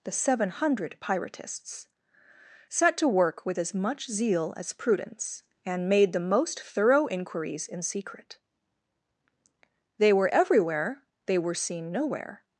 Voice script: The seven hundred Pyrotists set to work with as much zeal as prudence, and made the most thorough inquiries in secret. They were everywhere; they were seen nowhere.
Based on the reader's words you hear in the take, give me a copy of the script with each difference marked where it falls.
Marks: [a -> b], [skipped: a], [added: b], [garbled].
The seven hundred Pyrotists set to work with as much zeal as prudence, and made the most thorough inquiries in secret. They were everywhere; they were seen nowhere.